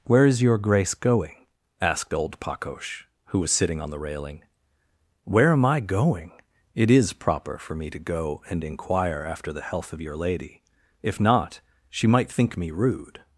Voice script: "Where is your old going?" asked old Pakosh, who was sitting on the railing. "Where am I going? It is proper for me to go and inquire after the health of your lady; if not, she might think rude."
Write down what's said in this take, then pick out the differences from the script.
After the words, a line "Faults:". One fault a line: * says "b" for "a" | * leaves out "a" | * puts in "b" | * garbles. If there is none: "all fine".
"Where is your grace going?" asked old Pakosh, who was sitting on the railing. "Where am I going? It is proper for me to go and inquire after the health of your lady; if not, she might think me rude."
Faults:
* says "grace" for "old"
* puts in "me"